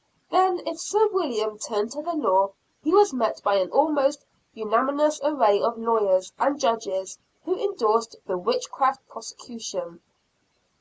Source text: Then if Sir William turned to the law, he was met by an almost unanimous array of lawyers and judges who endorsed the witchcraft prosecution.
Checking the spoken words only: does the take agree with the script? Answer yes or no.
yes